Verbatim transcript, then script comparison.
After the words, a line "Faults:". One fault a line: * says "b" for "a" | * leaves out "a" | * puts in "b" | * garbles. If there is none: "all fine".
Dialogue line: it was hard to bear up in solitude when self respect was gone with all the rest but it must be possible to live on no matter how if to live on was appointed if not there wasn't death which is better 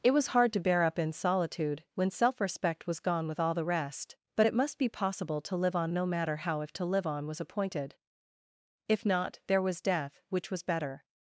it was hard to bear up in solitude when self respect was gone with all the rest but it must be possible to live on no matter how if to live on was appointed if not there was death which was better
Faults:
* says "was" for "wasn't"
* says "was" for "is"